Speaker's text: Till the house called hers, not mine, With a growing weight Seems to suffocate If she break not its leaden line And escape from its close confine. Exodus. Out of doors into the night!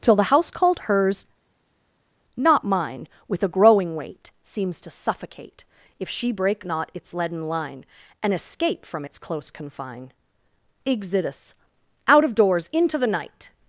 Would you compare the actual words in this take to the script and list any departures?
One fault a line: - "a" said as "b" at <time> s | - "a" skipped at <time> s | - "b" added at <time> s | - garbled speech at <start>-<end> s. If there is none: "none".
none